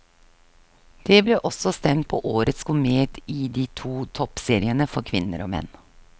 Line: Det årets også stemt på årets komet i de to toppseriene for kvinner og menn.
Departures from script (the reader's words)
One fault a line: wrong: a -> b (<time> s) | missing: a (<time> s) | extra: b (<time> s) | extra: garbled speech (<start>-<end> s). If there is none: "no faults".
wrong: årets -> ble (1.3 s)